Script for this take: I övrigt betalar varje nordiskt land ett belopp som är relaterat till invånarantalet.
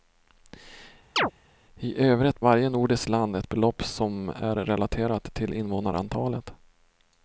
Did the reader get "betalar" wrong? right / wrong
wrong